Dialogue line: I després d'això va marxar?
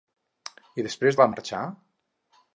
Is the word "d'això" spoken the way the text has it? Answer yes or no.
no